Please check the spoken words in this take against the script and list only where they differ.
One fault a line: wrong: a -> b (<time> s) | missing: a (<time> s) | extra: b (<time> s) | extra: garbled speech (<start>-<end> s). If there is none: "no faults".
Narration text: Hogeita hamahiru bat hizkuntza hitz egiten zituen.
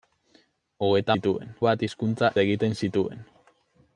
wrong: hamahiru -> zituen (1.1 s)
missing: hitz (2.3 s)